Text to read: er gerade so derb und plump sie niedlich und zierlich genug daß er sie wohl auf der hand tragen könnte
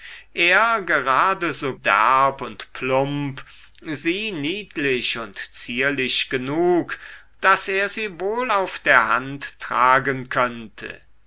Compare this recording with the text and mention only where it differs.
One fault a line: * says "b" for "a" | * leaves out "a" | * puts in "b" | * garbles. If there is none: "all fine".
all fine